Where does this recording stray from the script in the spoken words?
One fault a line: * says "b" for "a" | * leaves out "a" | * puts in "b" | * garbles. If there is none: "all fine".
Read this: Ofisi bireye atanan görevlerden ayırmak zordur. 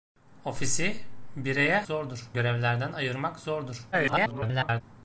* says "zordur" for "atanan"
* garbles